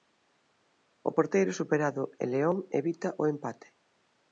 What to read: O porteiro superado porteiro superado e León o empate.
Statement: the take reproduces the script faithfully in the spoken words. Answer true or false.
false